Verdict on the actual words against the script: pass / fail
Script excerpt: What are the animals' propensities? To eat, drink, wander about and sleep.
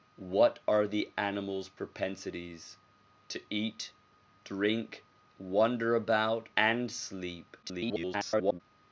fail